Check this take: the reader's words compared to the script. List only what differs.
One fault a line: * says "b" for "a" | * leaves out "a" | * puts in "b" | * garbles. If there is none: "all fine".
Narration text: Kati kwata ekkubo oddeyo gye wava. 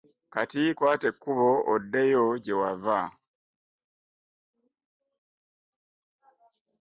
all fine